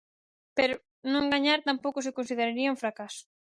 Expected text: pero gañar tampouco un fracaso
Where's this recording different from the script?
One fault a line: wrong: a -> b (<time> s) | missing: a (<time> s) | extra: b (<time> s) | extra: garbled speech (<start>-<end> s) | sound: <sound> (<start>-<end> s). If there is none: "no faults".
extra: non (1.1 s)
extra: se consideraría (2.1 s)